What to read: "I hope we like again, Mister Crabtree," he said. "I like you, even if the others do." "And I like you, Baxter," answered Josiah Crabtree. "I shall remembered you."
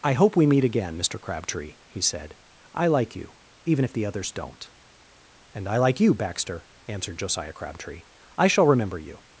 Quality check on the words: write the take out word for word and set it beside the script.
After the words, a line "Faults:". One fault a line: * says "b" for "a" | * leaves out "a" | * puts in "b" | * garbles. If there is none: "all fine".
"I hope we meet again, Mister Crabtree," he said. "I like you, even if the others don't." "And I like you, Baxter," answered Josiah Crabtree. "I shall remember you."
Faults:
* says "meet" for "like"
* says "don't" for "do"
* says "remember" for "remembered"